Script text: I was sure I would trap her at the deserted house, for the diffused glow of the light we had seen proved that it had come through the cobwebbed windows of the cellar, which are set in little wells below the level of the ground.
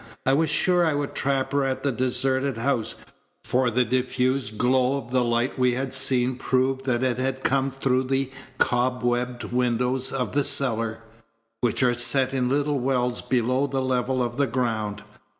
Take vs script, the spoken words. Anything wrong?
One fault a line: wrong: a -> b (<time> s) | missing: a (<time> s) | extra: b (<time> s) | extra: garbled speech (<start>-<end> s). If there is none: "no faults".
no faults